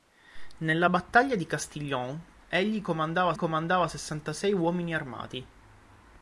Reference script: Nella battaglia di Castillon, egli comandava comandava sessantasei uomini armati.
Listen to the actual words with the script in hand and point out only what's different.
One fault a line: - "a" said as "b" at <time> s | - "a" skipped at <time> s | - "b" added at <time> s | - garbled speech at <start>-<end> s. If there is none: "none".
none